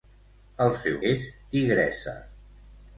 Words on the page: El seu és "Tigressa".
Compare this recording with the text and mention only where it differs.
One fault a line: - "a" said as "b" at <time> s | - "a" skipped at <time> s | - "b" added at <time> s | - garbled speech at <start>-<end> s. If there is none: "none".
none